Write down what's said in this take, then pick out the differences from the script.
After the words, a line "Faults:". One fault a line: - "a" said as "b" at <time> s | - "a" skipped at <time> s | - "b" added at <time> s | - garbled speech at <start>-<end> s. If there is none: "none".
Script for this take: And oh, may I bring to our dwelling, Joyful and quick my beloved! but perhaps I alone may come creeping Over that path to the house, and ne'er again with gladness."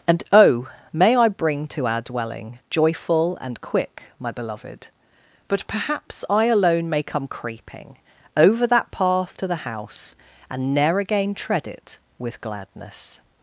And oh, may I bring to our dwelling, Joyful and quick my beloved! but perhaps I alone may come creeping Over that path to the house, and ne'er again tread it with gladness."
Faults:
- "tread it" added at 11.3 s